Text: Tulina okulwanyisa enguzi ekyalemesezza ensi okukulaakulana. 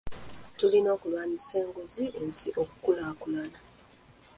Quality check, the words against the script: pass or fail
fail